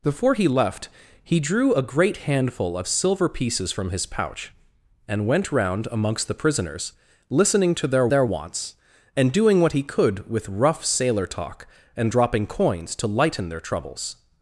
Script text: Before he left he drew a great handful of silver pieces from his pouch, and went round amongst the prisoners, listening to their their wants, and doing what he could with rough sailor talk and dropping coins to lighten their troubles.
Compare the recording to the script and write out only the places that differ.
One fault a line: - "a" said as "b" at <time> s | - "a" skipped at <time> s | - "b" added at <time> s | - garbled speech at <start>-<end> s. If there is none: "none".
none